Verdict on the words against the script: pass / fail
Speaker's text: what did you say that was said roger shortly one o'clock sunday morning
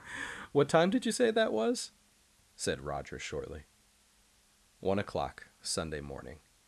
fail